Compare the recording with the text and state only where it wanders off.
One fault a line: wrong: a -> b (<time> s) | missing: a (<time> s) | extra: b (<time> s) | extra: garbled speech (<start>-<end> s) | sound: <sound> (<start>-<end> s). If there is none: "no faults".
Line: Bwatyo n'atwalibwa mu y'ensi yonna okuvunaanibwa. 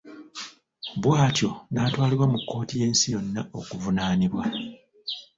extra: kkooti (2.4 s)